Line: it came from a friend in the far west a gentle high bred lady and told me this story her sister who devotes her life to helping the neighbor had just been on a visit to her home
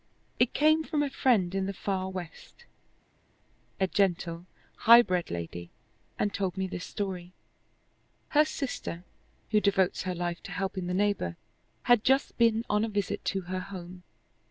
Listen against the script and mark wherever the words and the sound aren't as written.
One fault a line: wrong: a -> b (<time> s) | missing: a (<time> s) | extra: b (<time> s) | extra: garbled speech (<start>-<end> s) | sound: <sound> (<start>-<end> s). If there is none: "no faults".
no faults